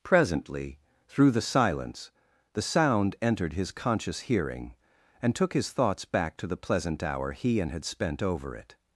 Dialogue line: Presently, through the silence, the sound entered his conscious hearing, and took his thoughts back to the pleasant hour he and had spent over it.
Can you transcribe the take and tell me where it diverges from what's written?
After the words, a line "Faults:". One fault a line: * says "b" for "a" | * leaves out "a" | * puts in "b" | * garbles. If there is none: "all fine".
Presently, through the silence, the sound entered his conscious hearing, and took his thoughts back to the pleasant hour he and had spent over it.
Faults:
all fine